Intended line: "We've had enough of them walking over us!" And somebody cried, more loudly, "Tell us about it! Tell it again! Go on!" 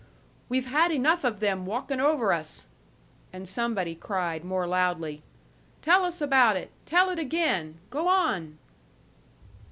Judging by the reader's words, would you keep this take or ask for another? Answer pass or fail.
pass